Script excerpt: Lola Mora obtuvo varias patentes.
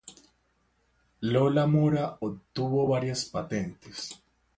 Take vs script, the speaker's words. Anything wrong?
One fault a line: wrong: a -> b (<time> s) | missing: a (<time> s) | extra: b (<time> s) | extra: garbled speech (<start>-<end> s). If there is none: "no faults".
no faults